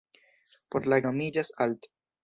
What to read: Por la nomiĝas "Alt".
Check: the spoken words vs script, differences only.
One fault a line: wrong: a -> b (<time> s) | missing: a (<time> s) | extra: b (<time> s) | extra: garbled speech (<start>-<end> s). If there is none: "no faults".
no faults